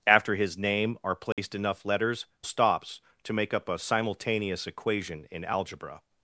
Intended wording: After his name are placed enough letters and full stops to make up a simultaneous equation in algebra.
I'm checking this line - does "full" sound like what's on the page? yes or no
no